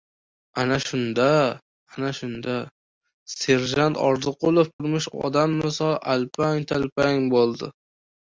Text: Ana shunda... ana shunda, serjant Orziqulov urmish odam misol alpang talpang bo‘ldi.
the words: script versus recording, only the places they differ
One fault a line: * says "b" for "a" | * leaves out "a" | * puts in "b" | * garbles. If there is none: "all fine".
all fine